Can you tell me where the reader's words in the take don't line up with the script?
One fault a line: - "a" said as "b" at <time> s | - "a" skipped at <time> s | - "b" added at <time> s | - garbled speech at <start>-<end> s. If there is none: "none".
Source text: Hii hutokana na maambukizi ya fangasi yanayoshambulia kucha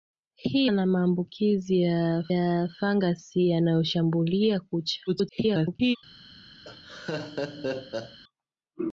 - "hutokana" skipped at 0.7 s
- "ya" added at 2.3 s
- garbled speech at 5.1-6.0 s